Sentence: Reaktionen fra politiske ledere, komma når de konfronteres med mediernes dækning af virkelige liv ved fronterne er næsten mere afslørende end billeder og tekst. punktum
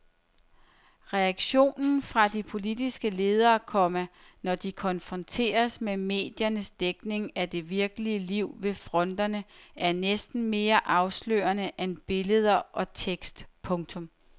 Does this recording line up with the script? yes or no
no